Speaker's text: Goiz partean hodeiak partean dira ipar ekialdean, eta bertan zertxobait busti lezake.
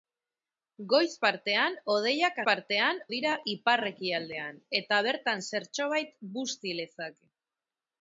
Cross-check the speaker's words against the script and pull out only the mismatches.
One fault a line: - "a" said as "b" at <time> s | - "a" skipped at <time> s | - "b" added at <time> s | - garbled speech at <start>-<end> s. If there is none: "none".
none